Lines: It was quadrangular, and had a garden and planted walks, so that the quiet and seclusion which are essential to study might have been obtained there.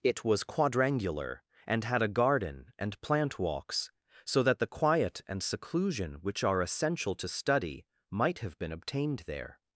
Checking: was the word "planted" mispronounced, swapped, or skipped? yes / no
yes